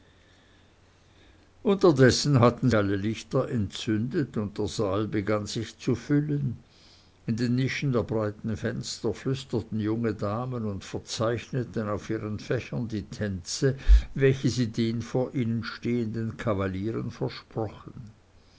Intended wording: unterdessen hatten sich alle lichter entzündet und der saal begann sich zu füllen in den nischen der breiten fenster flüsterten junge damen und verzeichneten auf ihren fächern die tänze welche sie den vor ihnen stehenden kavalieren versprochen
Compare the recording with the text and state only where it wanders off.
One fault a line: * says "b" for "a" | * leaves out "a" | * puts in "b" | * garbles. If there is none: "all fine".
* leaves out "sich"